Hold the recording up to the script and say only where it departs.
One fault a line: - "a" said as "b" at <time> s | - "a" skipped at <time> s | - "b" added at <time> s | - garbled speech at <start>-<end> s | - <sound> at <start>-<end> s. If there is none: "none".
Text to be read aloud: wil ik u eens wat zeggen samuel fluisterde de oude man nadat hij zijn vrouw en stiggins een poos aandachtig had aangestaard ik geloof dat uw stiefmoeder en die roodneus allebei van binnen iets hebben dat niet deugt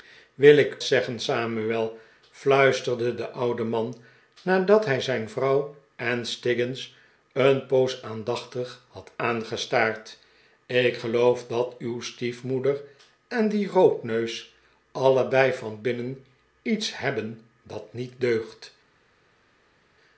- "u eens wat" skipped at 0.8 s